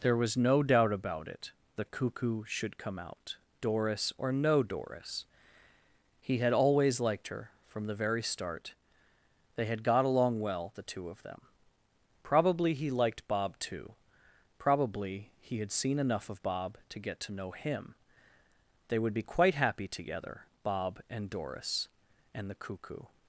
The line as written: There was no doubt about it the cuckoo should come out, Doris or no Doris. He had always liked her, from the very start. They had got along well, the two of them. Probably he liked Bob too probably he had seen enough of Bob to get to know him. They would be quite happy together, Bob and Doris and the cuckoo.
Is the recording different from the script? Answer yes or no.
no